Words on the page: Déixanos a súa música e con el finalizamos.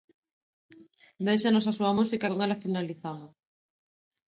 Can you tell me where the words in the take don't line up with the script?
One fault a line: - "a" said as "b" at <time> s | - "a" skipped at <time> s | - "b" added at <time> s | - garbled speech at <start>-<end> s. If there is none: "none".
- "el" said as "ela" at 2.4 s